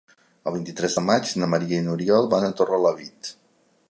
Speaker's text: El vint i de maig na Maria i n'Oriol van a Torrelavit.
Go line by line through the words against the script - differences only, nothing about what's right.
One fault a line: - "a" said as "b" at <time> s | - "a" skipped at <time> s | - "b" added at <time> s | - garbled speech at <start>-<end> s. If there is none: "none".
- "tres" added at 0.8 s